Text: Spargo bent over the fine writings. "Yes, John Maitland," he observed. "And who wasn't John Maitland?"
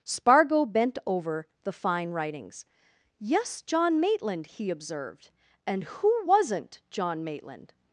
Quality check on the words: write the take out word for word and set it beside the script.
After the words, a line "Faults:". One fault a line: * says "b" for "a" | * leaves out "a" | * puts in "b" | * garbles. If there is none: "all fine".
Spargo bent over the fine writings. "Yes, John Maitland," he observed. "And who wasn't John Maitland?"
Faults:
all fine